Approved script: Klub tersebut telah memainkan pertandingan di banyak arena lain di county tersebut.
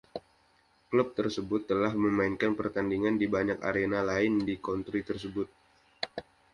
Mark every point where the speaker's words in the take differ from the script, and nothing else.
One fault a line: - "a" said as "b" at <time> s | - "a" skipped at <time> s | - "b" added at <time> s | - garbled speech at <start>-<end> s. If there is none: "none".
none